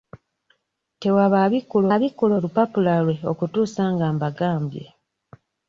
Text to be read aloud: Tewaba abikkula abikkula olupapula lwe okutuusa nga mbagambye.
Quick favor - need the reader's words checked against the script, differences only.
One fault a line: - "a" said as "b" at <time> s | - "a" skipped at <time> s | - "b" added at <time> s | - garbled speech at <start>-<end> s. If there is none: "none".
none